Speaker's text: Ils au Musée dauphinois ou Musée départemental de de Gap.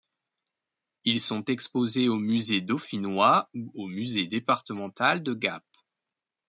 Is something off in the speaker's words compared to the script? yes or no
yes